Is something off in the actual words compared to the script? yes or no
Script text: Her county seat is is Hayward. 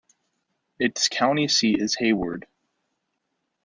yes